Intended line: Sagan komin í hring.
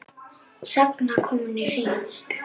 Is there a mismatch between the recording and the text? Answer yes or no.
no